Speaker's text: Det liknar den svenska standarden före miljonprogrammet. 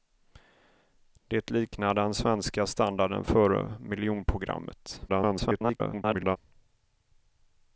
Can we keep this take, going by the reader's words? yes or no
no